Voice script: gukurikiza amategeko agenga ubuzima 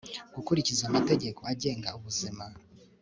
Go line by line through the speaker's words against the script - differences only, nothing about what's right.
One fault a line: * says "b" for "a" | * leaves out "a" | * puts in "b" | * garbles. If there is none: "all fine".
all fine